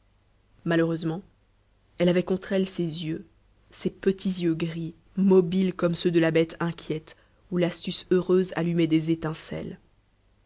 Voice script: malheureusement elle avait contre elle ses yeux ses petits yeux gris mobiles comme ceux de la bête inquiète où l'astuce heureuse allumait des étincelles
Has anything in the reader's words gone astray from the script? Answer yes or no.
no